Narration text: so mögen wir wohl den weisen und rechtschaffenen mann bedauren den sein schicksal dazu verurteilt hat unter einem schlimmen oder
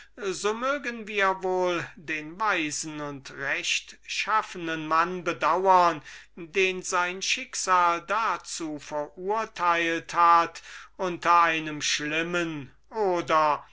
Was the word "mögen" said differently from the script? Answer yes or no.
no